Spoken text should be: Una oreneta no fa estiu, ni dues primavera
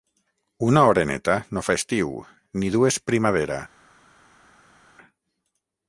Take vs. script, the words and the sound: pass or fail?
pass